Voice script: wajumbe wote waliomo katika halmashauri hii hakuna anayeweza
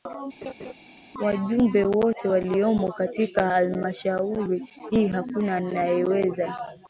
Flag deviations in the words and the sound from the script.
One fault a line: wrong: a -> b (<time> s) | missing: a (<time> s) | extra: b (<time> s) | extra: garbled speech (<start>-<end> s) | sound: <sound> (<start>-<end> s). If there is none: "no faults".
sound: laugh (0.4-0.7 s)